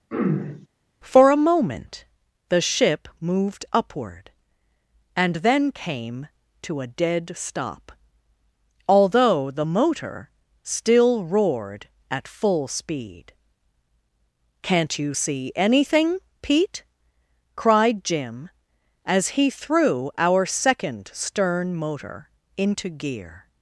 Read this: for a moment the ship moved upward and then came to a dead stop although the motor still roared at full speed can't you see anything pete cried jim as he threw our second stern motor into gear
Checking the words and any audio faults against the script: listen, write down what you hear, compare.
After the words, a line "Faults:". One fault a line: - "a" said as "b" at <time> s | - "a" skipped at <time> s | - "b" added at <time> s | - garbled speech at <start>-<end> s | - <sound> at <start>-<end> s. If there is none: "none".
for a moment the ship moved upward and then came to a dead stop although the motor still roared at full speed can't you see anything pete cried jim as he threw our second stern motor into gear
Faults:
- throat clearing at 0.1-0.7 s